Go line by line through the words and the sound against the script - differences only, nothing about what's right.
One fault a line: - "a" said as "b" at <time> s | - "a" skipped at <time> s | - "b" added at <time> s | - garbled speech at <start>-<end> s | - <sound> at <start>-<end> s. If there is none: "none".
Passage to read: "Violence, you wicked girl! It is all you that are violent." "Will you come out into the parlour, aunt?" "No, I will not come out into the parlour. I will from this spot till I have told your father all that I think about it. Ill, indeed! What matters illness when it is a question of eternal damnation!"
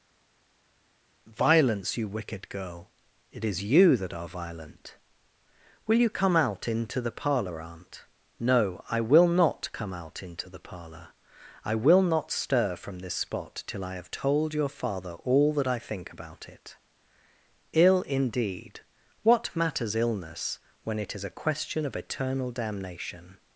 - "all" skipped at 3.6 s
- "not stir" added at 12.0 s